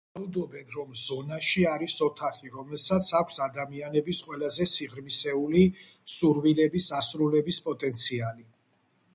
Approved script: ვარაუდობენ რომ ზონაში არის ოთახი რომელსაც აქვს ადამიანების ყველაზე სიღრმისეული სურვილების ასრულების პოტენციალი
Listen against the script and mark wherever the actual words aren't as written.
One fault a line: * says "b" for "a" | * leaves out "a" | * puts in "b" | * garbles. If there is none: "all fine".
all fine